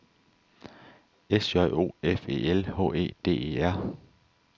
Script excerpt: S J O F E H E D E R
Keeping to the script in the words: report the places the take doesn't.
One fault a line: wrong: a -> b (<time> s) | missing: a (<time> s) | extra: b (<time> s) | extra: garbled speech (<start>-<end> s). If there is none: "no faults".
extra: L (2.5 s)